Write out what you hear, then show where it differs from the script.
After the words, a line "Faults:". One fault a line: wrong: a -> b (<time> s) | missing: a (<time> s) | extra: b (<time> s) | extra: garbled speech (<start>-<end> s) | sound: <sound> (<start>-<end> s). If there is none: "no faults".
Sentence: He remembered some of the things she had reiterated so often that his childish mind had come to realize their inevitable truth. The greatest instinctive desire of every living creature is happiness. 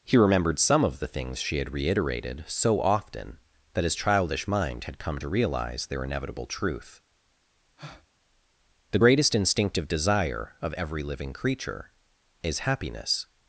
He remembered some of the things she had reiterated so often that his childish mind had come to realize their inevitable truth. The greatest instinctive desire of every living creature is happiness.
Faults:
sound: breath (7.8-8.1 s)